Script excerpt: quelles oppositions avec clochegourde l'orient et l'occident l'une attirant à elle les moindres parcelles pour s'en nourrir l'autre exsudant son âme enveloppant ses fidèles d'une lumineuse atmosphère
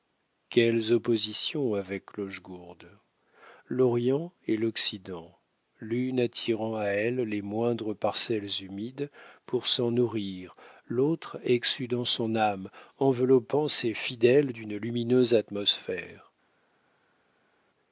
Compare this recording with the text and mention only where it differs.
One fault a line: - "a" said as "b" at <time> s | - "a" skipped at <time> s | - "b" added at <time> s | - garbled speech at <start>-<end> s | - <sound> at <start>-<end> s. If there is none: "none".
- "humides" added at 8.6 s